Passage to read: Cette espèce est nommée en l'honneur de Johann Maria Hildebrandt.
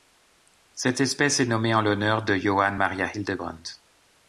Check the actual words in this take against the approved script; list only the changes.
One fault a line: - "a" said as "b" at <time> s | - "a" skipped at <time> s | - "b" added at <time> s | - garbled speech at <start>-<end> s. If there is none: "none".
none